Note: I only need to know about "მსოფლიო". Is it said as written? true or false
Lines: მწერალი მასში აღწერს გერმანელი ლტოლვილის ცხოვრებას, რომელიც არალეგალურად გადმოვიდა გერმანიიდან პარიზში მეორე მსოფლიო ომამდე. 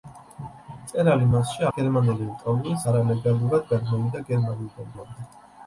false